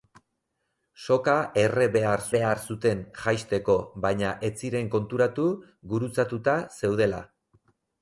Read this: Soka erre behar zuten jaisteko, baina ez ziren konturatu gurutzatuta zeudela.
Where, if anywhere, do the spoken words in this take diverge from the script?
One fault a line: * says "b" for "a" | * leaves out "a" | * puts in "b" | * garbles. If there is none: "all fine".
* puts in "behar"